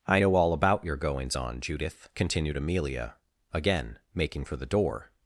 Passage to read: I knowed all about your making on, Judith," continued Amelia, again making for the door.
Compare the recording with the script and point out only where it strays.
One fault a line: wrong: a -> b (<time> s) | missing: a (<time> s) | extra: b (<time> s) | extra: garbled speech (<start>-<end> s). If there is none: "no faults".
wrong: knowed -> know (0.2 s)
wrong: making -> goings (1.0 s)